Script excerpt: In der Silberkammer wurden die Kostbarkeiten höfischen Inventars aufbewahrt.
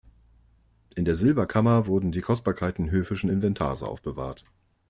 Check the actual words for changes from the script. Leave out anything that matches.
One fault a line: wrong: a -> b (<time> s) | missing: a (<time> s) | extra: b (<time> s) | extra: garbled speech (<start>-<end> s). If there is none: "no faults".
no faults